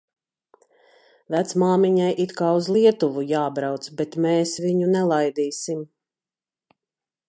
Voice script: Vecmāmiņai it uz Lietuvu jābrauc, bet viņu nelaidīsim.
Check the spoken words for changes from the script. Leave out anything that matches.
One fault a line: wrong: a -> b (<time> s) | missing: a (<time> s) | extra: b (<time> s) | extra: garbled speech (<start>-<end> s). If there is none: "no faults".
extra: kā (2.4 s)
extra: mēs (4.3 s)